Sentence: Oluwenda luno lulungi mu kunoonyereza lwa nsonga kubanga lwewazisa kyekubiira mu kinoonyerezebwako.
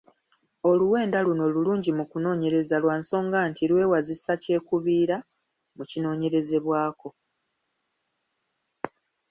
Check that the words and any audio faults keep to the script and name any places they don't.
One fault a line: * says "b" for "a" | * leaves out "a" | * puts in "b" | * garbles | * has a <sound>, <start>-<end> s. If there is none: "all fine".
* says "nti" for "kubanga"